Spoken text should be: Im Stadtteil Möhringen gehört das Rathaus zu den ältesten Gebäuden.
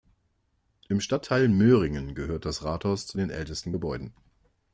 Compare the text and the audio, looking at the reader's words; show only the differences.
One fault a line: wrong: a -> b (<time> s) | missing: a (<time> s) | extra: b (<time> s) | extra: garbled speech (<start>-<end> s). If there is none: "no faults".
no faults